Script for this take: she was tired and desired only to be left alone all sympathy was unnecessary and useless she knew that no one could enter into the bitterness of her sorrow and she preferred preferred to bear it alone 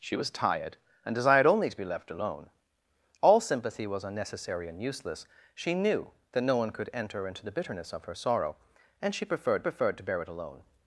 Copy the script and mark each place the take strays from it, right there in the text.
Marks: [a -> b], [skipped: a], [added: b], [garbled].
she was tired and desired only to be left alone all sympathy was unnecessary and useless she knew that no one could enter into the bitterness of her sorrow and she preferred preferred to bear it alone